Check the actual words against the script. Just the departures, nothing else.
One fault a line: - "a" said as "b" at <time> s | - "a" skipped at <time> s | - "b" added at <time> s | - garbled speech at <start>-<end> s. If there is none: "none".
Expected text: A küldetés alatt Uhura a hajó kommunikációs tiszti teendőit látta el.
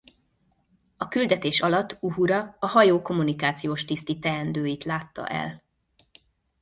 none